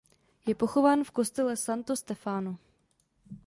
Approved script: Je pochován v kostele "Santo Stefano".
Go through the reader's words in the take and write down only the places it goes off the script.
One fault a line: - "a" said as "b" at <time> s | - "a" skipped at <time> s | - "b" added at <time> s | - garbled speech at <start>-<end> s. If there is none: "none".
none